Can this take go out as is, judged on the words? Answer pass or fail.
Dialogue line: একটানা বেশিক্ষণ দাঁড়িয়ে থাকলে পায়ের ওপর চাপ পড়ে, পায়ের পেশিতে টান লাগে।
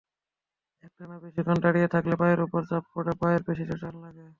pass